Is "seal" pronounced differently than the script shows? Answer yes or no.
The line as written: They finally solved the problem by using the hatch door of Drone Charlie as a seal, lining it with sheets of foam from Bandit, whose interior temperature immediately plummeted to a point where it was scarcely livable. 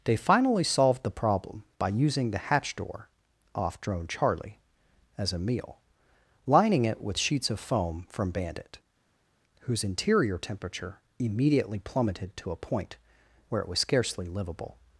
yes